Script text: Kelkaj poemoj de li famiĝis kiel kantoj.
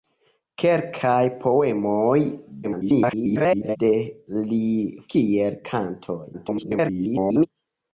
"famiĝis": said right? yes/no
no